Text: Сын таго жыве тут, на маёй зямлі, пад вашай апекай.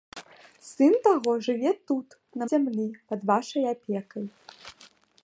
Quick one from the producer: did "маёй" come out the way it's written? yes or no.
no